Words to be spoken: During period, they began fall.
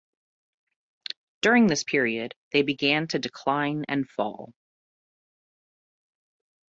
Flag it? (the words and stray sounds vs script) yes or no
yes